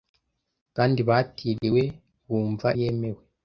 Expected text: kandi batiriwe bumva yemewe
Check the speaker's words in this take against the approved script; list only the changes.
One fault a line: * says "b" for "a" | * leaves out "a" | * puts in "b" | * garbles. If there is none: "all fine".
all fine